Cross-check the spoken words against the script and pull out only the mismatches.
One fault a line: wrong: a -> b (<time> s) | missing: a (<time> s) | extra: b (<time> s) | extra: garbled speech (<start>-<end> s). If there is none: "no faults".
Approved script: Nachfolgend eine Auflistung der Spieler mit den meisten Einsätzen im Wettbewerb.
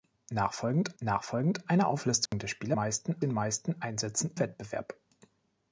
extra: nachfolgend (1.0 s)
wrong: mit -> meisten (2.7 s)
missing: im (4.3 s)